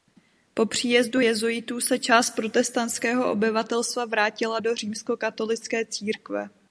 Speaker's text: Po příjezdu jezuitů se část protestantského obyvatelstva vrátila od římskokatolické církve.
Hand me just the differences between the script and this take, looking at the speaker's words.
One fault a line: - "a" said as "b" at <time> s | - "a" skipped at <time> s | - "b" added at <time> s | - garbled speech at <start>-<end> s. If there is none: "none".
- "od" said as "do" at 4.6 s